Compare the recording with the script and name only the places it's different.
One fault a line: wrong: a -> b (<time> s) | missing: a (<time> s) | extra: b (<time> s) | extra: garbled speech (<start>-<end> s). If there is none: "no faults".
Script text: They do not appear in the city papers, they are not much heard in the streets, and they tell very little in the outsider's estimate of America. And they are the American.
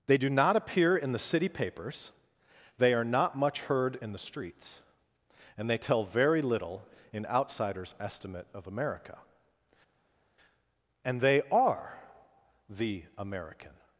missing: the (7.3 s)